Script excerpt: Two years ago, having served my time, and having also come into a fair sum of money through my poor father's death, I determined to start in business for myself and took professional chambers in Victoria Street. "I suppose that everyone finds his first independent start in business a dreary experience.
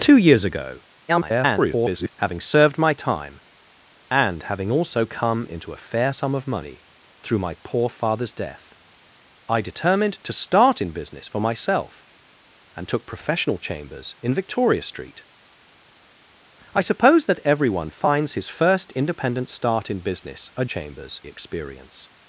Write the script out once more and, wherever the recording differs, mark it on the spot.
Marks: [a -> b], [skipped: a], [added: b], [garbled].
Two years ago, [garbled] having served my time, and having also come into a fair sum of money through my poor father's death, I determined to start in business for myself and took professional chambers in Victoria Street. "I suppose that everyone finds his first independent start in business a [dreary -> chambers] experience.